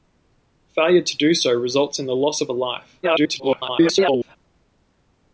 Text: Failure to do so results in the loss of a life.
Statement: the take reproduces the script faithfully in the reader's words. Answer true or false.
false